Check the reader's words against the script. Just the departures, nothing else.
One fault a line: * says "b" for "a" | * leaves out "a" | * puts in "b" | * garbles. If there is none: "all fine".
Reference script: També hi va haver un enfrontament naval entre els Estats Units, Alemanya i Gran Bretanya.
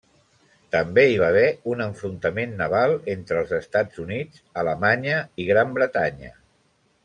all fine